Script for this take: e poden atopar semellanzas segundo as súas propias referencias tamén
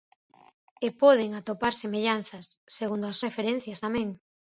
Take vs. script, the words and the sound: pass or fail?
fail